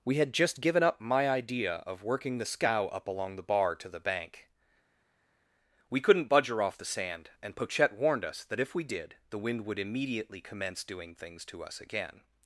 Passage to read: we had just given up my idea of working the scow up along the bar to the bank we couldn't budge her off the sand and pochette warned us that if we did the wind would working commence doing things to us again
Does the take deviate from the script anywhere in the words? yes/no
yes